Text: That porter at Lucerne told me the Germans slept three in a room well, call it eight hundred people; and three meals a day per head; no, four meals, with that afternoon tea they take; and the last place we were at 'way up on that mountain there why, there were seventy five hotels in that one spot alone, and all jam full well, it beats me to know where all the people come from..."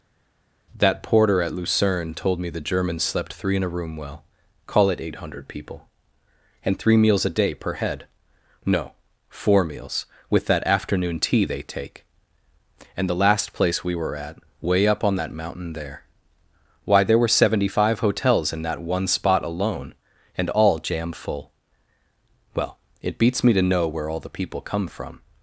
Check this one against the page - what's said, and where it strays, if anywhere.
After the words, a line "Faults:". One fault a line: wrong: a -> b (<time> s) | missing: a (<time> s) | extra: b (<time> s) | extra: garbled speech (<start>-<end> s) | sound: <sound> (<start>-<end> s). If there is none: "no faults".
That porter at Lucerne told me the Germans slept three in a room well, call it eight hundred people; and three meals a day per head; no, four meals, with that afternoon tea they take; and the last place we were at 'way up on that mountain there why, there were seventy five hotels in that one spot alone, and all jam full well, it beats me to know where all the people come from..."
Faults:
no faults